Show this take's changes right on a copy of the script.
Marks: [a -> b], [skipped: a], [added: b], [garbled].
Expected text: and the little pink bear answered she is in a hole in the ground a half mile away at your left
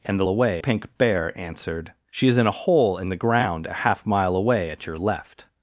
and the [little -> away] pink bear answered she is in a hole in the ground a half mile away at your left